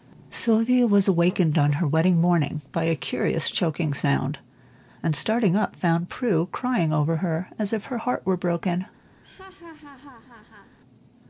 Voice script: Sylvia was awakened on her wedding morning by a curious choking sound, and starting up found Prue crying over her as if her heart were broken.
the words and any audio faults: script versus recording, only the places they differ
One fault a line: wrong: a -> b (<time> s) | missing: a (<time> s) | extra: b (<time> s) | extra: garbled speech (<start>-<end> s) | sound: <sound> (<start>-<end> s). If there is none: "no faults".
sound: laugh (9.2-10.8 s)